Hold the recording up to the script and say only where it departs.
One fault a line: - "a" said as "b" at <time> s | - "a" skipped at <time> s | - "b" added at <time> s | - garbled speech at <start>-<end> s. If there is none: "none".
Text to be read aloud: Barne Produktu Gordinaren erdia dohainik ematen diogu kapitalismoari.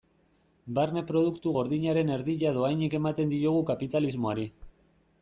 none